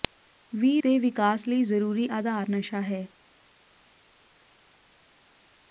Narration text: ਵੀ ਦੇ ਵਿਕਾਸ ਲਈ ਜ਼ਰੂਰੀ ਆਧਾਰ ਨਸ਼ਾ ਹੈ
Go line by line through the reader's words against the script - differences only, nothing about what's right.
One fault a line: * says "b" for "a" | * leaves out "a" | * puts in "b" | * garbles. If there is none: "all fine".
all fine